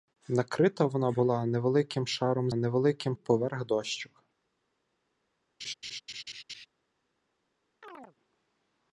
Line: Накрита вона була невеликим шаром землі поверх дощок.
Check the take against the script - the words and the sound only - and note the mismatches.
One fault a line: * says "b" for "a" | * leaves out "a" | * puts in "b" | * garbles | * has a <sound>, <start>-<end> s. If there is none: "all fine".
* says "невеликим" for "землі"
* has a laugh, 5.6-6.7 s
* has a chirp, 7.8-8.2 s